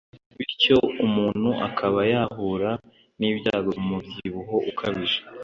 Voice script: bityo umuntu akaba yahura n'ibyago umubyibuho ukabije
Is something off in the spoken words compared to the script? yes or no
no